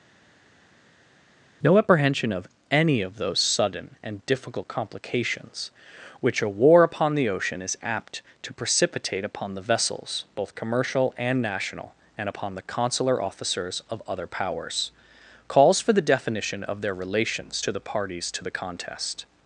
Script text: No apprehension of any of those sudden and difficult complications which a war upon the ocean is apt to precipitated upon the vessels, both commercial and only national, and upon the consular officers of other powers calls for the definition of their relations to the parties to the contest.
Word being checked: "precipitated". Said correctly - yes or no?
no